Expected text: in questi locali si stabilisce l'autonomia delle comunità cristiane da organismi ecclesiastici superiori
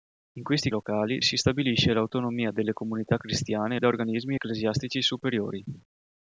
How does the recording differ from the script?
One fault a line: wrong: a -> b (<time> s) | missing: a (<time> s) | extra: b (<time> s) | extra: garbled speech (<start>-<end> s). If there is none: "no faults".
no faults